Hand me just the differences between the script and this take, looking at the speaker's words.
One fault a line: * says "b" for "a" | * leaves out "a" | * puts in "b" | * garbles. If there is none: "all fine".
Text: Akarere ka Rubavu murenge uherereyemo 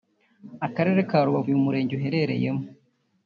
* puts in "uyu"